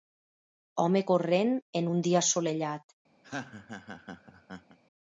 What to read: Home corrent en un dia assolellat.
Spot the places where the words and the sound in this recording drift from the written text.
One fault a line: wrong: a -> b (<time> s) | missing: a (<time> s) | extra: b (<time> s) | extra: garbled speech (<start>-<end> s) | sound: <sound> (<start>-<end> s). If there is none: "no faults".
sound: laugh (3.2-4.8 s)